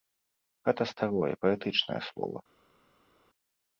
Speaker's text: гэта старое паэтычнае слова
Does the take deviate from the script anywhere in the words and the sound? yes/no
no